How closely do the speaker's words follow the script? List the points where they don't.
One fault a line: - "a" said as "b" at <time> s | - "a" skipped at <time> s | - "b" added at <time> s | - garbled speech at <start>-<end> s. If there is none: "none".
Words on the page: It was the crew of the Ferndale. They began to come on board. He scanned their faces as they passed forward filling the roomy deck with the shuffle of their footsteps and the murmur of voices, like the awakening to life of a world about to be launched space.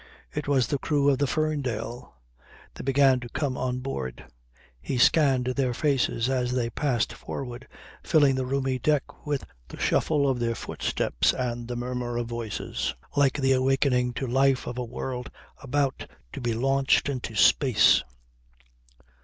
- "into" added at 17.1 s